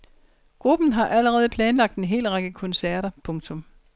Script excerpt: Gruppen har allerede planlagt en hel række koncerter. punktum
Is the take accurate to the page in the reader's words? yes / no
yes